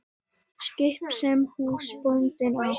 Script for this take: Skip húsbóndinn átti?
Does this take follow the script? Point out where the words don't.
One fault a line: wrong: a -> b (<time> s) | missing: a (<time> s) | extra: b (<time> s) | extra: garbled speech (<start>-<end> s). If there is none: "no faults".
extra: sem (1.2 s)